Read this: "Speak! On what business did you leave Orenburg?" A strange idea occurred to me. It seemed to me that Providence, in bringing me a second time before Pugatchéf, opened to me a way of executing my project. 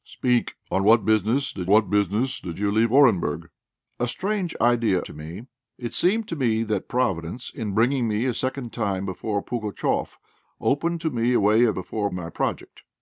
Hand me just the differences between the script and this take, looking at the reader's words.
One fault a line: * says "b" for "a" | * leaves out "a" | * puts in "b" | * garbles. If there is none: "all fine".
* puts in "what business did"
* leaves out "occurred"
* says "before" for "executing"